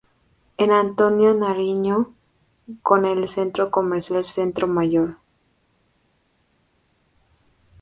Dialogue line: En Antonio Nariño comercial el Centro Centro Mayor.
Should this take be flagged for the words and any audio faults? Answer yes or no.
yes